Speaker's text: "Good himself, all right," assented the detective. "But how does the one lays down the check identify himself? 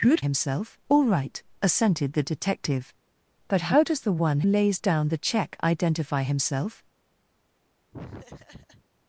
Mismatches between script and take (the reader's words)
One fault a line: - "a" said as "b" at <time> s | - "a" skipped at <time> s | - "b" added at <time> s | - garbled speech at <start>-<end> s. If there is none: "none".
none